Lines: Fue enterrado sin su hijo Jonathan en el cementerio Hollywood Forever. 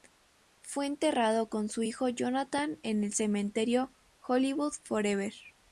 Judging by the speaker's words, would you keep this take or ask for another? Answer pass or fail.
fail